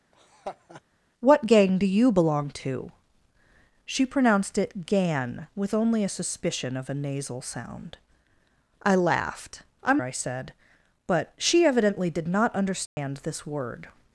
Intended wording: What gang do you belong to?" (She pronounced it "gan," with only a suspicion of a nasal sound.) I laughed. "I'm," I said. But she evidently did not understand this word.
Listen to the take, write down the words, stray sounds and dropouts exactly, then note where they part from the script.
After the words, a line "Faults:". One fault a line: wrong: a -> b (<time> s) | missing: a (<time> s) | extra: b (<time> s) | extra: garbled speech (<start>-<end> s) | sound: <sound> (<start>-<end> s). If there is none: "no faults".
What gang do you belong to?" (She pronounced it "gan," with only a suspicion of a nasal sound.) I laughed. "I'm," I said. But she evidently did not understand this word.
Faults:
sound: laugh (0.1-0.8 s)
sound: dropout (12.9-13.0 s)